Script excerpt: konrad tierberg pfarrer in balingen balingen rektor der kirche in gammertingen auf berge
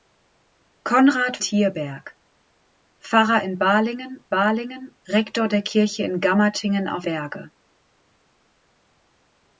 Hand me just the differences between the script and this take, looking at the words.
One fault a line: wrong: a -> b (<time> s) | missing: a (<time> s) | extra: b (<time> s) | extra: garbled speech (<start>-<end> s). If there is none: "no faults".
no faults